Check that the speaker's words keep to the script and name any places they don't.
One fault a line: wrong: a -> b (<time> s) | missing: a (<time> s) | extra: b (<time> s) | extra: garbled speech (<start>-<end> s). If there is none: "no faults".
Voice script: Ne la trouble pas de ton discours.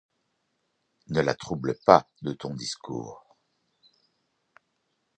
no faults